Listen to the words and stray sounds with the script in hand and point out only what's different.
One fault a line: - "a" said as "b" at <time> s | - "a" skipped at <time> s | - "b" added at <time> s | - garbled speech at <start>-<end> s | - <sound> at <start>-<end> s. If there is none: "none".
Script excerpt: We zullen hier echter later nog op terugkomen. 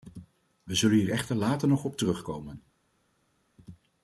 none